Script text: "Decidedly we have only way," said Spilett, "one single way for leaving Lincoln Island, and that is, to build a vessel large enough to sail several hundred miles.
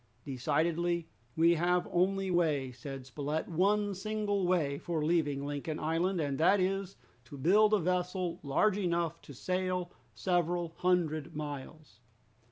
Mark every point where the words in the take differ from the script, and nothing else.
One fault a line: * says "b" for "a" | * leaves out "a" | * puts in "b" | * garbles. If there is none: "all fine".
all fine